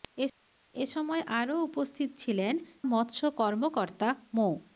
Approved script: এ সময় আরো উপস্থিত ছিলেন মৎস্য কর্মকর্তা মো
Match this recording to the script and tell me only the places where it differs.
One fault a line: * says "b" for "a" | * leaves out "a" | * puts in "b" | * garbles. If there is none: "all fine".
all fine